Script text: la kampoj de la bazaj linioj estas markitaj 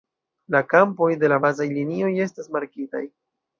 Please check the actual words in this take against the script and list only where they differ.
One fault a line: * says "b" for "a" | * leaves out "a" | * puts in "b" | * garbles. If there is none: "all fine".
all fine